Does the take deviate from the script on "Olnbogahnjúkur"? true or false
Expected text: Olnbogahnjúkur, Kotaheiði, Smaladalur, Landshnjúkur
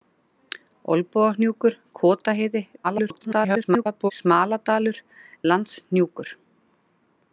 false